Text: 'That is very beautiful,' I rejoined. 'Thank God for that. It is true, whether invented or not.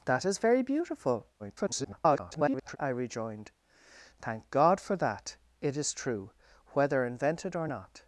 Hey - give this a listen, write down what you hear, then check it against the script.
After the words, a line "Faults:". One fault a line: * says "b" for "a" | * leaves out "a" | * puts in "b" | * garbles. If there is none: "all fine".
'That is very beautiful,' [garbled] I rejoined. 'Thank God for that. It is true, whether invented or not.
Faults:
* garbles